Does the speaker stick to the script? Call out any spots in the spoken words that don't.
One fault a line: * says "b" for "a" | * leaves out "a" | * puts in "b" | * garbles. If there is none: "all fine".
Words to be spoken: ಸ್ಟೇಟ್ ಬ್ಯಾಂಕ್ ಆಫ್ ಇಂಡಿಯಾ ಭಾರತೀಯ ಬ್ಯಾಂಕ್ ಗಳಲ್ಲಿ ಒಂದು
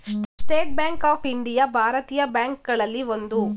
all fine